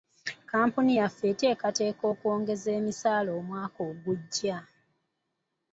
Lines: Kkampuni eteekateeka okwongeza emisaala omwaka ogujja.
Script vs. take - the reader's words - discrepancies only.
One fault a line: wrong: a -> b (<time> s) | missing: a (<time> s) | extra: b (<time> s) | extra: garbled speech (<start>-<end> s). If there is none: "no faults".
extra: yaffe (1.0 s)